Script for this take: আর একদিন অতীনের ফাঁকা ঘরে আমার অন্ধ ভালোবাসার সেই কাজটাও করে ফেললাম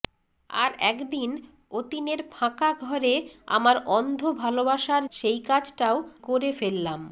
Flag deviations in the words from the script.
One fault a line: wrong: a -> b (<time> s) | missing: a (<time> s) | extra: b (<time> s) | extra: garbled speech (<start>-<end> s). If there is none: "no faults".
no faults